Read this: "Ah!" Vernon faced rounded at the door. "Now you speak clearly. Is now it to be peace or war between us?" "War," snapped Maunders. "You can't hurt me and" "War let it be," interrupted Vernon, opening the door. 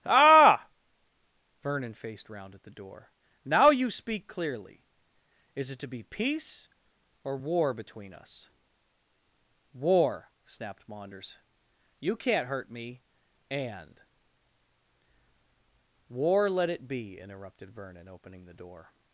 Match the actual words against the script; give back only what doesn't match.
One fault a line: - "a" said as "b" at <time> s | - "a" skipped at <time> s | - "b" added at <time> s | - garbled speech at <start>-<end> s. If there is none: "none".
- "rounded" said as "round" at 2.3 s
- "now" skipped at 5.7 s